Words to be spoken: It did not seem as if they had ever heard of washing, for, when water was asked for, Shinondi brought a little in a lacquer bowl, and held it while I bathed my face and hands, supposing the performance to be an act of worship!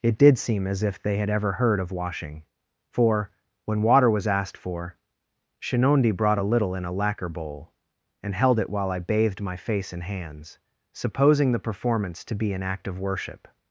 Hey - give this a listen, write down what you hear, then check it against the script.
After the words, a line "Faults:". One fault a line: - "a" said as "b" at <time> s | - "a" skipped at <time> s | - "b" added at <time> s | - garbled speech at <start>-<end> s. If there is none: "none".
It did seem as if they had ever heard of washing, for, when water was asked for, Shinondi brought a little in a lacquer bowl, and held it while I bathed my face and hands, supposing the performance to be an act of worship!
Faults:
- "not" skipped at 0.4 s